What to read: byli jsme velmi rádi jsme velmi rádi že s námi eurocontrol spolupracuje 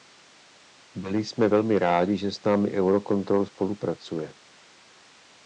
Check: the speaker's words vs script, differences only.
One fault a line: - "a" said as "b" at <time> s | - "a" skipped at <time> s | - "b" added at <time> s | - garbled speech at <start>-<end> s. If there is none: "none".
- "jsme velmi rádi" skipped at 2.2 s